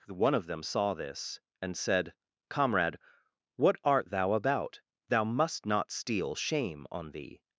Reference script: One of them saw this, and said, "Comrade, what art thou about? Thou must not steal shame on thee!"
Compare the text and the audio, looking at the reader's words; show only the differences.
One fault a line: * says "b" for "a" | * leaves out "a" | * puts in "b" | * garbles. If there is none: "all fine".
all fine